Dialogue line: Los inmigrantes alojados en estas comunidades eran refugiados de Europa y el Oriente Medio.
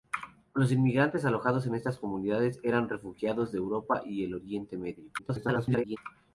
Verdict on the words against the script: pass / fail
fail